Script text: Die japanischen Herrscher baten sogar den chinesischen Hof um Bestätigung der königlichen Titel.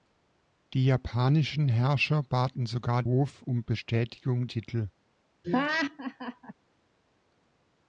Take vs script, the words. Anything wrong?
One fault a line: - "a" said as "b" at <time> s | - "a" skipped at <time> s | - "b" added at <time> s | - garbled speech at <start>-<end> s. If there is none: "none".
- "den chinesischen" skipped at 3.0 s
- "der königlichen" skipped at 4.5 s